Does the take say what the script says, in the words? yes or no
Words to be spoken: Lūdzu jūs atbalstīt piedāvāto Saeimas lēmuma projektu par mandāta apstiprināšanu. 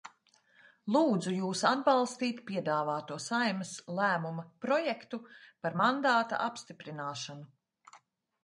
yes